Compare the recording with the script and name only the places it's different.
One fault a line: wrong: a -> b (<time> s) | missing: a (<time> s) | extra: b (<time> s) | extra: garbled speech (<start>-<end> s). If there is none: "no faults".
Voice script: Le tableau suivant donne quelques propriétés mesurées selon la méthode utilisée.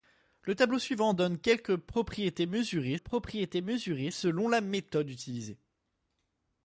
extra: propriétés mesurées (2.9 s)